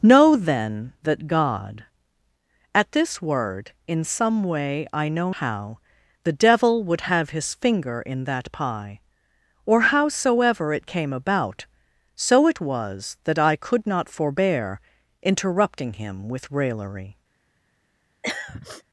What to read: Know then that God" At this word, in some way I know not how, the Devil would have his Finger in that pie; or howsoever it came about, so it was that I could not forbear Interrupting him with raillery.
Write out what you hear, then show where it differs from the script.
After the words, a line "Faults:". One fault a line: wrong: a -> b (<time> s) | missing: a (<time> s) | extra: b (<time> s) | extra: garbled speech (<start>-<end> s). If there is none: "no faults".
Know then that God" At this word, in some way I know how, the Devil would have his Finger in that pie; or howsoever it came about, so it was that I could not forbear Interrupting him with raillery.
Faults:
missing: not (5.3 s)